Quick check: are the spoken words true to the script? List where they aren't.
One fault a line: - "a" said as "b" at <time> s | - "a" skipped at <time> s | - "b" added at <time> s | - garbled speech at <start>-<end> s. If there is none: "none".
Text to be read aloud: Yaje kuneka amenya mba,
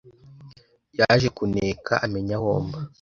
- "aho" added at 2.4 s